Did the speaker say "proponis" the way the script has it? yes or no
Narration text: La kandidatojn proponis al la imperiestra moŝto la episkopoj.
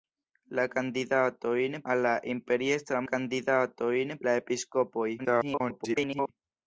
no